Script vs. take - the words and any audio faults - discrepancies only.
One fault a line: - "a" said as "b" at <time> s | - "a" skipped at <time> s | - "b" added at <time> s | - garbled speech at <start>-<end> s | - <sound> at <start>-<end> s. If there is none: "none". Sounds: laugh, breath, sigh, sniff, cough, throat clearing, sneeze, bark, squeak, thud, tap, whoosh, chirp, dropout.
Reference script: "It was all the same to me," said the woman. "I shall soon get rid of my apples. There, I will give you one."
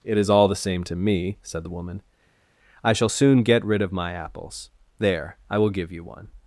- "was" said as "is" at 0.2 s